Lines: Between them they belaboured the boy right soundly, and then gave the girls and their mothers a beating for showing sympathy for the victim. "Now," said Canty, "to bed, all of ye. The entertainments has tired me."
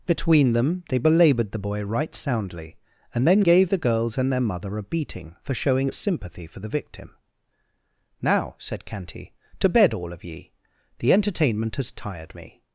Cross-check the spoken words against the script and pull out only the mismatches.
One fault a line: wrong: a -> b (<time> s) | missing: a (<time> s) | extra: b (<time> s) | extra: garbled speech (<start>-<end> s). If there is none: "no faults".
wrong: mothers -> mother (4.4 s)
wrong: entertainments -> entertainment (11.1 s)